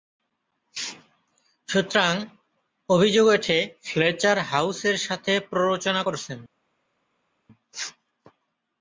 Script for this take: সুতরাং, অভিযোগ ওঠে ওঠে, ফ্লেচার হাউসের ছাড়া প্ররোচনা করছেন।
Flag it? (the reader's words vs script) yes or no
yes